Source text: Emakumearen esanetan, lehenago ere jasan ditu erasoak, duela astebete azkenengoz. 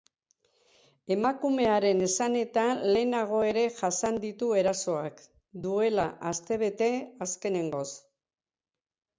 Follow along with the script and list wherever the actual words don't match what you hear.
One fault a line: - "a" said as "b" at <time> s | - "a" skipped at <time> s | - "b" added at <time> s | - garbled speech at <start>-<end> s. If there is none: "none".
none